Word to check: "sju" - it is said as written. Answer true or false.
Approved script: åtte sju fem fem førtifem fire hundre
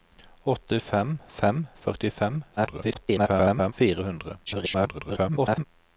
false